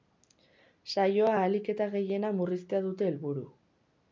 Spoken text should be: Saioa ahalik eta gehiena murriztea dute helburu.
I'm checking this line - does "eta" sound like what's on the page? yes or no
yes